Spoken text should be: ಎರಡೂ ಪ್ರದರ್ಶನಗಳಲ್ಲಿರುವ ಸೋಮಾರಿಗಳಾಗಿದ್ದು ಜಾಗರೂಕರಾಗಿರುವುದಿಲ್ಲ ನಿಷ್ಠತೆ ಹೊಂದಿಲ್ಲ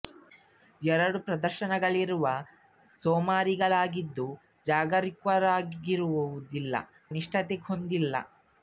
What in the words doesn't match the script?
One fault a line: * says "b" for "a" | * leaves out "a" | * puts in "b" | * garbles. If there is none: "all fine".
all fine